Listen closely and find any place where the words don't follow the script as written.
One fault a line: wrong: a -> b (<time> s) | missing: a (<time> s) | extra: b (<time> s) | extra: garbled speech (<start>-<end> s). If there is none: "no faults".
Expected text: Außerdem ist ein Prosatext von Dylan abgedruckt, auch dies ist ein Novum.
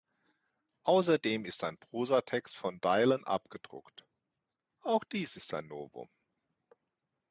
no faults